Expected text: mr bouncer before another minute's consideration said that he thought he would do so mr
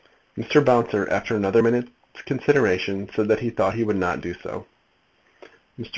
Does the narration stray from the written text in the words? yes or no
yes